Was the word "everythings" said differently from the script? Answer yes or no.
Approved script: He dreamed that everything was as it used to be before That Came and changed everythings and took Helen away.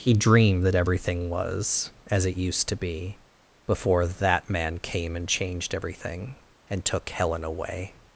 yes